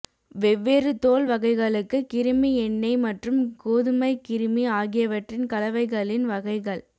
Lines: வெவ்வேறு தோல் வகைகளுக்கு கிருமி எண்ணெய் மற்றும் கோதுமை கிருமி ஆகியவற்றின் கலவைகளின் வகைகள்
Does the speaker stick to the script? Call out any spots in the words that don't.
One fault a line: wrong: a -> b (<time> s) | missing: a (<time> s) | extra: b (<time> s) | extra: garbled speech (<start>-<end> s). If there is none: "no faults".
no faults